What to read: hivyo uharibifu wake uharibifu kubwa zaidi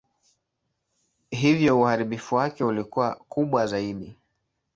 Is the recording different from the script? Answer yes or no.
yes